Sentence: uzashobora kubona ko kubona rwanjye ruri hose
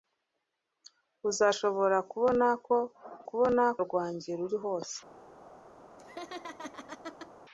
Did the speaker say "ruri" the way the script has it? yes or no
yes